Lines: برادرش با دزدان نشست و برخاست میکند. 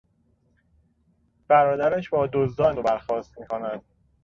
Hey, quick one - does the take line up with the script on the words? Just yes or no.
no